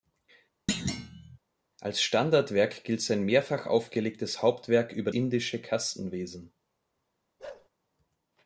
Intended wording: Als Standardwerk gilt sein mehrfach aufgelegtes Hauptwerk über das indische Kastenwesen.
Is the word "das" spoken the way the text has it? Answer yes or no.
no